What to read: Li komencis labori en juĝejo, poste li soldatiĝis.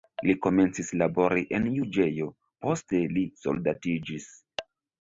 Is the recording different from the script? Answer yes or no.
no